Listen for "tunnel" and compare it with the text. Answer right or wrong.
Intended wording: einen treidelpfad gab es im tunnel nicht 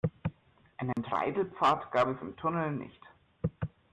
right